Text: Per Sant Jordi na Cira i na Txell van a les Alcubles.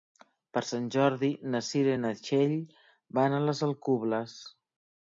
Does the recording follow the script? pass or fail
pass